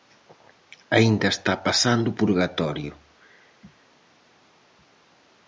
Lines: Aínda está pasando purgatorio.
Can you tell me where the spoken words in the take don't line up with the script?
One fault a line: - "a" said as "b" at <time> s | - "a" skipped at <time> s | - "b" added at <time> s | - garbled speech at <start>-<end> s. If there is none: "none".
none